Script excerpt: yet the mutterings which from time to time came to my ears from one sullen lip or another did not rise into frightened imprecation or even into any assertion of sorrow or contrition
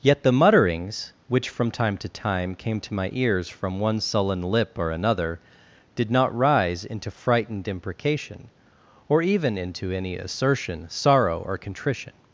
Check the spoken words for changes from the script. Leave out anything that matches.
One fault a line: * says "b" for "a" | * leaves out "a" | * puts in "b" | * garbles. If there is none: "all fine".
* leaves out "of"